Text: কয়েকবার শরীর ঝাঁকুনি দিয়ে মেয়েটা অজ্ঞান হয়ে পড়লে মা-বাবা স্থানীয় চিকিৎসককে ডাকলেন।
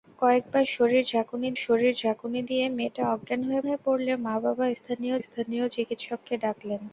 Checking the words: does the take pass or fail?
fail